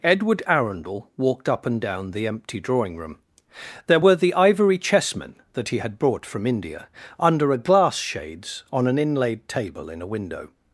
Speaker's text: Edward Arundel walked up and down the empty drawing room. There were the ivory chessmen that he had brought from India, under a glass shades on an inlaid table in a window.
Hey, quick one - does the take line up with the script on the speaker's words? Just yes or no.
yes